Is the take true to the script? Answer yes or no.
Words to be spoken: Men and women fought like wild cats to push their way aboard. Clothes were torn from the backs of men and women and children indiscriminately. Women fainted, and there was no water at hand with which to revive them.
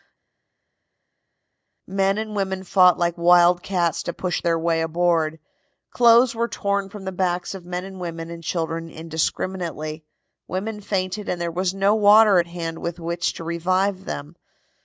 yes